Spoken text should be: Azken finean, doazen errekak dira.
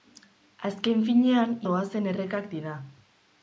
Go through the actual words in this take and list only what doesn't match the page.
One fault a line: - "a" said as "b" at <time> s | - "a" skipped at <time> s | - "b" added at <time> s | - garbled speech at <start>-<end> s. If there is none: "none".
none